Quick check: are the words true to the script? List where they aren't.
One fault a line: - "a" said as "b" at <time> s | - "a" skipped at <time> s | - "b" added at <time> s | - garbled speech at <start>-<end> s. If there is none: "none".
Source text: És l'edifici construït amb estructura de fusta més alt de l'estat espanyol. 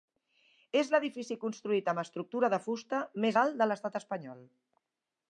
none